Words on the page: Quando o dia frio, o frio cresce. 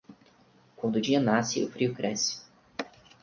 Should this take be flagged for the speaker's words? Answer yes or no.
yes